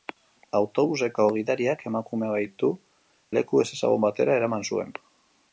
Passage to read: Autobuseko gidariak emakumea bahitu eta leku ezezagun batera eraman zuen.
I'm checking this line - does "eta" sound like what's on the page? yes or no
no